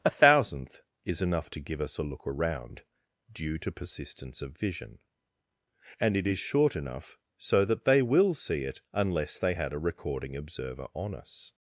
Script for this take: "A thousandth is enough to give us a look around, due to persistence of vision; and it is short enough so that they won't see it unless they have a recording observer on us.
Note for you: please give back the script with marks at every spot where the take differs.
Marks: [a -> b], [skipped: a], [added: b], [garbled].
"A thousandth is enough to give us a look around, due to persistence of vision; and it is short enough so that they [won't -> will] see it unless they [have -> had] a recording observer on us.